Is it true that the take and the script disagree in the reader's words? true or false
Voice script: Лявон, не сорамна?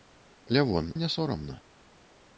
false